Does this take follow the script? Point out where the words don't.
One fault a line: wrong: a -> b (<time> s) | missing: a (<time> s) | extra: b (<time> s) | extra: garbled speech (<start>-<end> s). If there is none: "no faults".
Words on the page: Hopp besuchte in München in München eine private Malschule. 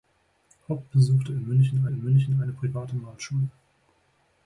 no faults